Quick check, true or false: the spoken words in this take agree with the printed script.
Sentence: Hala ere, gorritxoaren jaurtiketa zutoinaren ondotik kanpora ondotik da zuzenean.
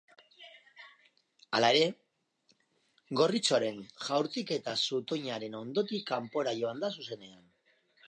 false